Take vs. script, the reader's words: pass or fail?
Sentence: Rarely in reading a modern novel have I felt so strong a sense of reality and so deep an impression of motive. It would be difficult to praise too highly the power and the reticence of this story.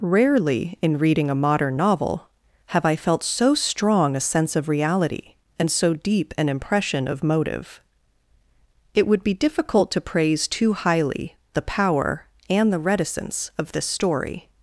pass